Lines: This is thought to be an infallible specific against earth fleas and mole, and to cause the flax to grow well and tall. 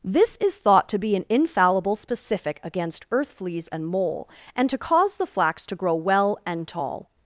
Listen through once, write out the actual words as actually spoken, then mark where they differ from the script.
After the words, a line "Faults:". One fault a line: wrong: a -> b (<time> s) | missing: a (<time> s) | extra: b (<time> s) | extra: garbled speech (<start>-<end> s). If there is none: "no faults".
This is thought to be an infallible specific against earth fleas and mole, and to cause the flax to grow well and tall.
Faults:
no faults